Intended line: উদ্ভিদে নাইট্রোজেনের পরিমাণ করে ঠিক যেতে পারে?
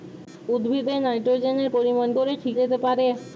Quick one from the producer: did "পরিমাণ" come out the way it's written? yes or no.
yes